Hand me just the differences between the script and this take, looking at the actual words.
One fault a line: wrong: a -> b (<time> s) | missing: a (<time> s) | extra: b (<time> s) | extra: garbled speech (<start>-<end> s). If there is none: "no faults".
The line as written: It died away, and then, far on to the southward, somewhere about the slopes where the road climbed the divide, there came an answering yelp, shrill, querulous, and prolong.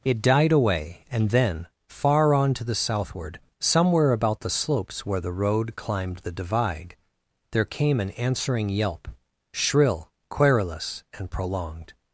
wrong: prolong -> prolonged (11.3 s)